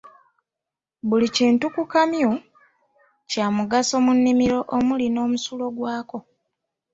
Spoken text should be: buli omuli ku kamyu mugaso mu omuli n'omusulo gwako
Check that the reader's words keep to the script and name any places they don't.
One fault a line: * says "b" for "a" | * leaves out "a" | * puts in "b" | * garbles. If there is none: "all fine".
* says "kintu" for "omuli"
* puts in "kya"
* puts in "nnimiro"